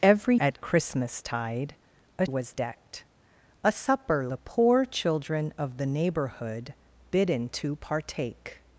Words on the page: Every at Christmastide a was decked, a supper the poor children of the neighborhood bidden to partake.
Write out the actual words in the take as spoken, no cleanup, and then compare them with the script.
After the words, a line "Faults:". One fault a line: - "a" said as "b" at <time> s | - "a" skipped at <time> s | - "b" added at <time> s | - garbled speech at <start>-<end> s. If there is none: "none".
Every at Christmastide a was decked, a supper the poor children of the neighborhood bidden to partake.
Faults:
none